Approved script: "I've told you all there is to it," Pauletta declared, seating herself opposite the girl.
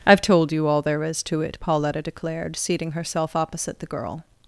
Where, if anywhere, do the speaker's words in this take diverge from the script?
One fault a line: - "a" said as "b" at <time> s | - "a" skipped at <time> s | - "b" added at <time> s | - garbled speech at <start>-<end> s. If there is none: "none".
none